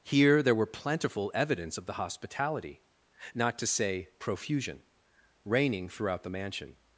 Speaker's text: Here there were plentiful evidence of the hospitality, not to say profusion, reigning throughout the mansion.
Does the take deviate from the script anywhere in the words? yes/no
no